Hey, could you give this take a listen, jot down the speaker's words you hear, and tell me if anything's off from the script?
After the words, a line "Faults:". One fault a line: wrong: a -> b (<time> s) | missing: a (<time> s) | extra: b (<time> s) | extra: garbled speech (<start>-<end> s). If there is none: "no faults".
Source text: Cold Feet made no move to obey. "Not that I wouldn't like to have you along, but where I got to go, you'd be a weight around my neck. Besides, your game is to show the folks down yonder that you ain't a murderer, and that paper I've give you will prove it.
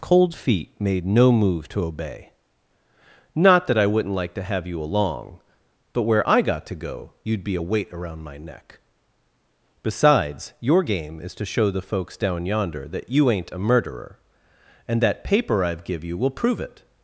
Cold Feet made no move to obey. "Not that I wouldn't like to have you along, but where I got to go, you'd be a weight around my neck. Besides, your game is to show the folks down yonder that you ain't a murderer, and that paper I've give you will prove it.
Faults:
no faults